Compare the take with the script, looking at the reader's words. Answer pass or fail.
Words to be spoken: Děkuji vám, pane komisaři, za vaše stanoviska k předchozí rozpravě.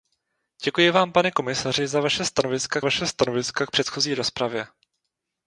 fail